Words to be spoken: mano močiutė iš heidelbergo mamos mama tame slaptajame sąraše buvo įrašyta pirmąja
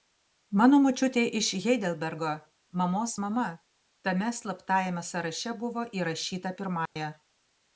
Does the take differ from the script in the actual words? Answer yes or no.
no